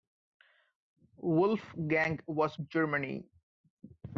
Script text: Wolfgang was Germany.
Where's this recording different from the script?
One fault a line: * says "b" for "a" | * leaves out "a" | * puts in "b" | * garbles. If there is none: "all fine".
all fine